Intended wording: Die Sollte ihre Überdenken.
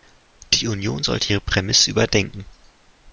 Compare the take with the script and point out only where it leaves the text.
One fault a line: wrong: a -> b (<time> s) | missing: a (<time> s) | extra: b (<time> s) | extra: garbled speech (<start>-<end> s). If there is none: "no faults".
extra: Union (0.7 s)
extra: Prämisse (1.4 s)